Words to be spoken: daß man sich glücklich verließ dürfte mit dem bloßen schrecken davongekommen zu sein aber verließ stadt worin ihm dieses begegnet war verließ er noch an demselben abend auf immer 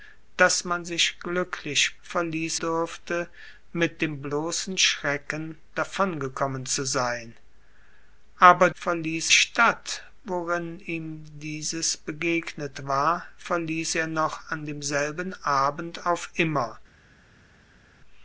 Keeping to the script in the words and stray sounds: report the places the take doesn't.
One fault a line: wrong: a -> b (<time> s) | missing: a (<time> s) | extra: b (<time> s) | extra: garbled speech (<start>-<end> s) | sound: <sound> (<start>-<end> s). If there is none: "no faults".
no faults